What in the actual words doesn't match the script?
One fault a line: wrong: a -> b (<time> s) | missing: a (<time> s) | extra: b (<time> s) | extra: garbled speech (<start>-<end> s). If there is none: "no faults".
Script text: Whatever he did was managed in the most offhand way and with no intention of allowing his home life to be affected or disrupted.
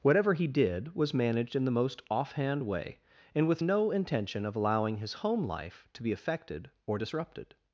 no faults